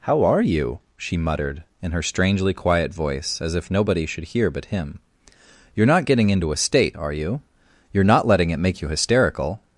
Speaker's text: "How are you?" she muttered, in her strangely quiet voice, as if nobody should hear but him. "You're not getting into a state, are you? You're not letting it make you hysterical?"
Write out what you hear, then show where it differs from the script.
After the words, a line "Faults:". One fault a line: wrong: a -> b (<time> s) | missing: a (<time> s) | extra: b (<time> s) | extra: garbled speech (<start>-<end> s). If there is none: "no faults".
"How are you?" she muttered, in her strangely quiet voice, as if nobody should hear but him. "You're not getting into a state, are you? You're not letting it make you hysterical?"
Faults:
no faults